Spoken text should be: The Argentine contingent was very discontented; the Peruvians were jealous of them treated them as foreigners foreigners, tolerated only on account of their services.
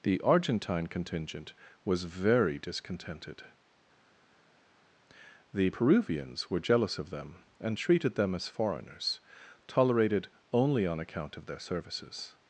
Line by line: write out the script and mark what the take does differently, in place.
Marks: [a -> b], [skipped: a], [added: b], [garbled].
The Argentine contingent was very discontented; the Peruvians were jealous of them [added: and] treated them as foreigners [skipped: foreigners,] tolerated only on account of their services.